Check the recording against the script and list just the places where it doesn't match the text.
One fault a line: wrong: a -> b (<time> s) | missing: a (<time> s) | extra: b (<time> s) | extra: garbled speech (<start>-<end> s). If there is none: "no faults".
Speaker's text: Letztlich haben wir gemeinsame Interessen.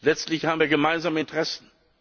no faults